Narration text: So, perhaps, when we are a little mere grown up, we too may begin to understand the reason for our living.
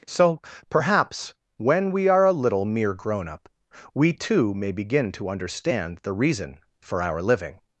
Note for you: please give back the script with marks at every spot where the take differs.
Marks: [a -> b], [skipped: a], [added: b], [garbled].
So, perhaps, when we are a little mere grown up, we too may begin to understand the reason for our living.